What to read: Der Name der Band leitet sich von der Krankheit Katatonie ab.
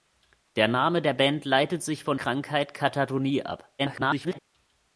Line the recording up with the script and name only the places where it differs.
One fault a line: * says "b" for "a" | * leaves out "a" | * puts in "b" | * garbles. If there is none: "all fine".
* leaves out "der"
* garbles